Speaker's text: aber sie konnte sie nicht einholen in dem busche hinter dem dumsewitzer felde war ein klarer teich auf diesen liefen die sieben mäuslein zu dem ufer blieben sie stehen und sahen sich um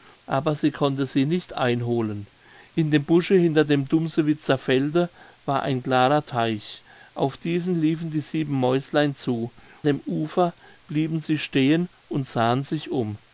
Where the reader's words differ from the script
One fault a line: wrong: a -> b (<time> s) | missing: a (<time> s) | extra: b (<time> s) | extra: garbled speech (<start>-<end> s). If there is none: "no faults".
no faults